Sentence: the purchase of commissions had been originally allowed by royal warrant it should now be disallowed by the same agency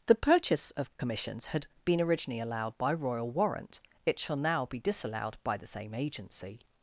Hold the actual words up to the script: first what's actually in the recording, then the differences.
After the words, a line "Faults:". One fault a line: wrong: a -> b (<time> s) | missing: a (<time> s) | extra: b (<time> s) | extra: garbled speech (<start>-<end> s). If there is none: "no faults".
the purchase of commissions had been originally allowed by royal warrant it shall now be disallowed by the same agency
Faults:
wrong: should -> shall (4.2 s)